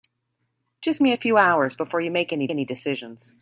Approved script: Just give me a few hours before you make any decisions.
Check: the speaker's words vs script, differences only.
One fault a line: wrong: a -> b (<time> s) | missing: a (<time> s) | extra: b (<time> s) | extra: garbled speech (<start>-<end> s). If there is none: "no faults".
missing: give (1.0 s)
extra: any (2.5 s)